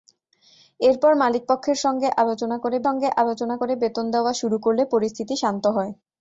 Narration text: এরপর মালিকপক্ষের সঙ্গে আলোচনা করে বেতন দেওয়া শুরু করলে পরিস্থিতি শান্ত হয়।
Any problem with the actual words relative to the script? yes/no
yes